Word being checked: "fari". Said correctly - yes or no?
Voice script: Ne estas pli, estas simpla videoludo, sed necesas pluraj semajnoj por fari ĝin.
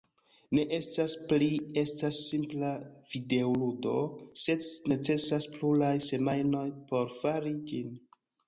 yes